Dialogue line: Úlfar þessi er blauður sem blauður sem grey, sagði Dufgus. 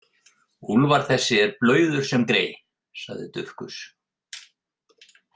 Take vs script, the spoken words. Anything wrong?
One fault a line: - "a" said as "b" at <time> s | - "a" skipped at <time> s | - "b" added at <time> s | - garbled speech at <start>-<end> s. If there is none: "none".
- "blauður sem" skipped at 2.2 s